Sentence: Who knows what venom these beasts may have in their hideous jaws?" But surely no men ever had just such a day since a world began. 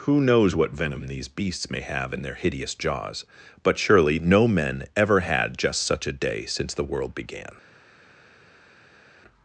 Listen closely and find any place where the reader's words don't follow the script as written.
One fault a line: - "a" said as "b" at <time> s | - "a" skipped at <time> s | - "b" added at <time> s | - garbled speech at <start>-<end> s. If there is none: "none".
- "a" said as "the" at 6.7 s